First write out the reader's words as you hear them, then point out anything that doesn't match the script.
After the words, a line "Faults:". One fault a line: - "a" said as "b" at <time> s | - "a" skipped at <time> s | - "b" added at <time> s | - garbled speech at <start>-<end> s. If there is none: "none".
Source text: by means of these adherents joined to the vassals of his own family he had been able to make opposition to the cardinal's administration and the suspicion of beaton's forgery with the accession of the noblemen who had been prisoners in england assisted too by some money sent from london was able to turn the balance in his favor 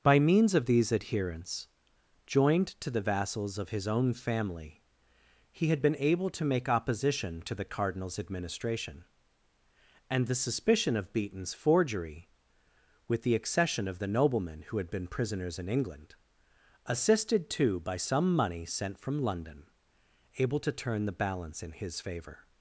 by means of these adherents joined to the vassals of his own family he had been able to make opposition to the cardinal's administration and the suspicion of beaton's forgery with the accession of the noblemen who had been prisoners in england assisted too by some money sent from london able to turn the balance in his favor
Faults:
- "was" skipped at 19.7 s